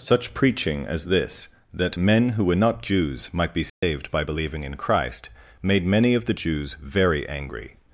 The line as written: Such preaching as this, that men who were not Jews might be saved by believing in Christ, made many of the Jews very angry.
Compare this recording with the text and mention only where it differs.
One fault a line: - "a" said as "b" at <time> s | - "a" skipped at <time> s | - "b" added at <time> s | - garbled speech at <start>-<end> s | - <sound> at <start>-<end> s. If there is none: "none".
- dropout at 3.7-3.8 s